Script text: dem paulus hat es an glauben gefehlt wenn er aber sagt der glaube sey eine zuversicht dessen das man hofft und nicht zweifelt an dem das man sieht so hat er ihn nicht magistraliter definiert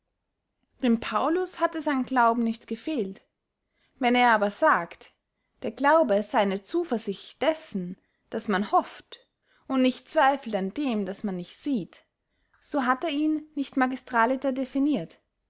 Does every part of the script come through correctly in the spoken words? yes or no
no